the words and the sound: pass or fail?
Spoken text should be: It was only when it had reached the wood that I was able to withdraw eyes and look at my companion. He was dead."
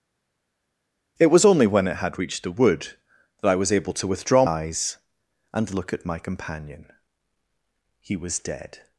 pass